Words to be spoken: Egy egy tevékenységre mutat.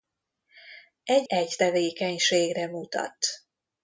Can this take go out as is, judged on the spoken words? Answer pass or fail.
pass